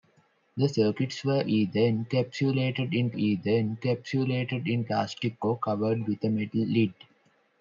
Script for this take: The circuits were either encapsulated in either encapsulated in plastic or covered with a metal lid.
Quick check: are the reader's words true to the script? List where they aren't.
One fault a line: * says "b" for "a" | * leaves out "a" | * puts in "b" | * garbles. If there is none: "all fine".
all fine